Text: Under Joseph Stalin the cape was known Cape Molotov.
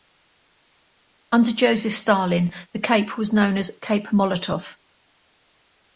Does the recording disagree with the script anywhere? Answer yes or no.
yes